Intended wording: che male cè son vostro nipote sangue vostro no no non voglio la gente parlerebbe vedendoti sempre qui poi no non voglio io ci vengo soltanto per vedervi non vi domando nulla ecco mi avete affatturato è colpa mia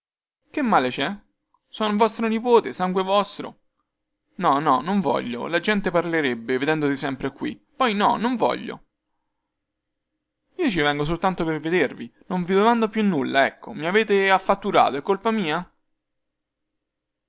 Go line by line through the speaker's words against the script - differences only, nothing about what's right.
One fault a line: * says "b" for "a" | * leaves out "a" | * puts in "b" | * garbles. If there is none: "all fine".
* puts in "più"